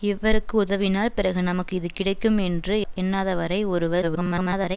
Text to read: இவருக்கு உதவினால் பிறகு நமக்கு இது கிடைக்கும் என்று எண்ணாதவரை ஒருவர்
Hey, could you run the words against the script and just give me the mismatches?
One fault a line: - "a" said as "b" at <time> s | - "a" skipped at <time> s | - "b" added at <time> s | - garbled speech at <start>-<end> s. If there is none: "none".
- garbled speech at 4.0-4.8 s